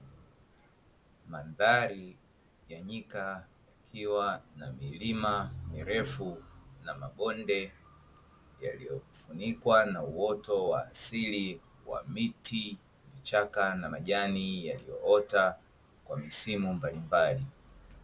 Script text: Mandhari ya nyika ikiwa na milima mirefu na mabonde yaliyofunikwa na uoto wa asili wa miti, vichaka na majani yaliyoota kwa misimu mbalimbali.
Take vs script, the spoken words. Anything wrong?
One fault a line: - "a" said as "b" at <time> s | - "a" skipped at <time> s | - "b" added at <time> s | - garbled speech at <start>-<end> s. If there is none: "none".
none